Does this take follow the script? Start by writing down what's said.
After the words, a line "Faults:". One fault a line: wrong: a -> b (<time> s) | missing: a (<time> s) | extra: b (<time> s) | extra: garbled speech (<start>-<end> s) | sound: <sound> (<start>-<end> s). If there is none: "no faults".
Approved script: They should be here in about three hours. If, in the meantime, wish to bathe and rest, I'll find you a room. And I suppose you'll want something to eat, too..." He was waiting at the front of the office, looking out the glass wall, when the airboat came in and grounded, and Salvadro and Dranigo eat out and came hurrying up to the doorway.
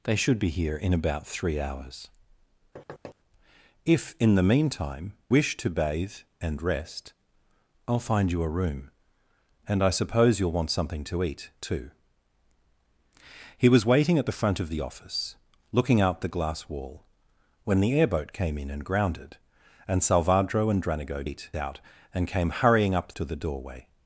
They should be here in about three hours. If, in the meantime, wish to bathe and rest, I'll find you a room. And I suppose you'll want something to eat, too..." He was waiting at the front of the office, looking out the glass wall, when the airboat came in and grounded, and Salvadro and Dranigo eat out and came hurrying up to the doorway.
Faults:
sound: thud (2.8-3.2 s)